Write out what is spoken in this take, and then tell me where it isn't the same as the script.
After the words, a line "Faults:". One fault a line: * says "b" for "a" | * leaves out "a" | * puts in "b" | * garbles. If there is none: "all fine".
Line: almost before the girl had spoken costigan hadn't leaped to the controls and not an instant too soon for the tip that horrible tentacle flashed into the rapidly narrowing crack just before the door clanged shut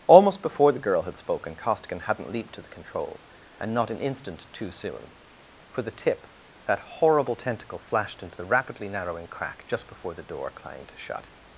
almost before the girl had spoken costigan hadn't leaped to the controls and not an instant too soon for the tip that horrible tentacle flashed into the rapidly narrowing crack just before the door clanged shut
Faults:
all fine